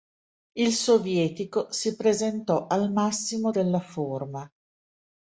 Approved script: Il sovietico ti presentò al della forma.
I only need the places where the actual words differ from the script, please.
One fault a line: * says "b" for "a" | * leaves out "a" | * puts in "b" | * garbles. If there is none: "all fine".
* says "si" for "ti"
* puts in "massimo"